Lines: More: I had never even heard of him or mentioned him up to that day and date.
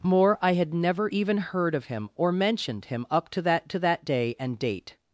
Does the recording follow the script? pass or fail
fail